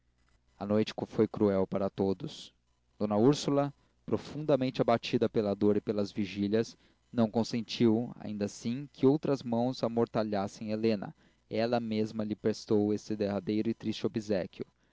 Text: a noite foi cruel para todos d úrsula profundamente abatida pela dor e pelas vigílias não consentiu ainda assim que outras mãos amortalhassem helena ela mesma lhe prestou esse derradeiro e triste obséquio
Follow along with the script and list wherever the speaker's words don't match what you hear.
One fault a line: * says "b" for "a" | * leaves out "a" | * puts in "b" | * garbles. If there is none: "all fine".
all fine